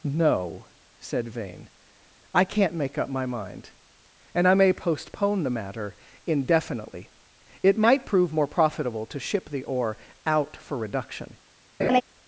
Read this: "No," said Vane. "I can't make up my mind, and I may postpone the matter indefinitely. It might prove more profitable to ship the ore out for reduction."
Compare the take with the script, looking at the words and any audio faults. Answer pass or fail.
fail